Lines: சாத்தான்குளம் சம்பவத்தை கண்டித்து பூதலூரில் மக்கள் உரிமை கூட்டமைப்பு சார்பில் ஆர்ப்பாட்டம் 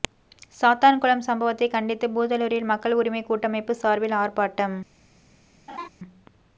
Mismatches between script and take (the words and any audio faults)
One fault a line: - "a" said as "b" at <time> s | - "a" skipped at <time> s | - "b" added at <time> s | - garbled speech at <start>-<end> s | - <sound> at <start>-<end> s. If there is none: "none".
- laugh at 5.7-5.9 s